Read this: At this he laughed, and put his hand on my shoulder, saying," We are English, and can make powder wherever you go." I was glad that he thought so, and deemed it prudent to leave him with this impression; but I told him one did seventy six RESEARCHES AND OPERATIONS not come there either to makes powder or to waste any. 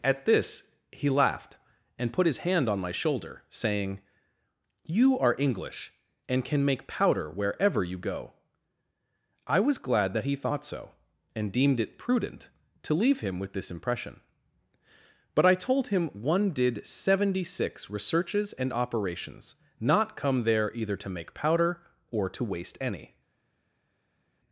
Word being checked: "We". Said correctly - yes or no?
no